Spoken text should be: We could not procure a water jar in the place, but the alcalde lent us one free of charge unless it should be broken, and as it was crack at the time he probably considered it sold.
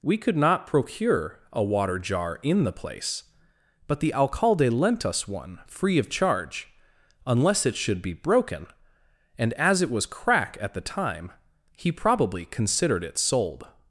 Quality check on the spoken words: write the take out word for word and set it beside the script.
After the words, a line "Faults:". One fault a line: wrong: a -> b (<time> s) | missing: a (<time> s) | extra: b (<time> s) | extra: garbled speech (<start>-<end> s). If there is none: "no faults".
We could not procure a water jar in the place, but the alcalde lent us one free of charge unless it should be broken, and as it was crack at the time he probably considered it sold.
Faults:
no faults